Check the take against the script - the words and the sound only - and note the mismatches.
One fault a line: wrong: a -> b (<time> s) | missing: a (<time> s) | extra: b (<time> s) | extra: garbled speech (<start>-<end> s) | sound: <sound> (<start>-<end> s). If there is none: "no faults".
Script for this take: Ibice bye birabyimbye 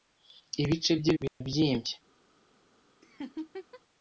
sound: dropout (1.3-1.4 s)
sound: laugh (3.0-3.8 s)